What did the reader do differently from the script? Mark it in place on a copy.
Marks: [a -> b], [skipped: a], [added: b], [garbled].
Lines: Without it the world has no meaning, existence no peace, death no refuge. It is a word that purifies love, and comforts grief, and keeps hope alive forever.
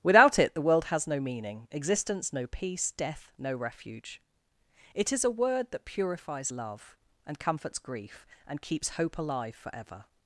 Without it the world has no meaning, existence no peace, death no refuge. It is a word that purifies love, and comforts grief, and keeps hope alive forever.